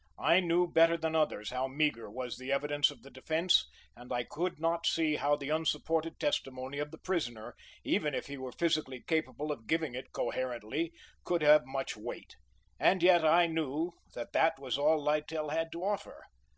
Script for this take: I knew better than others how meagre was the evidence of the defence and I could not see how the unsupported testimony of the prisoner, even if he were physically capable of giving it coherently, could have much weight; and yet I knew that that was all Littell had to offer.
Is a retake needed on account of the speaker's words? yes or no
no